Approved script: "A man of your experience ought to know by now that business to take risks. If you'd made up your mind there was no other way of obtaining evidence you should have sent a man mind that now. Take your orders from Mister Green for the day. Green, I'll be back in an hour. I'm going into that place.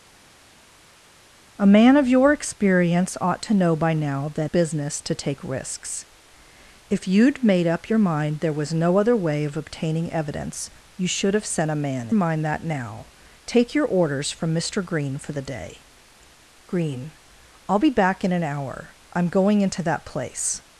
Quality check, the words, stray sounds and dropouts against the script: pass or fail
pass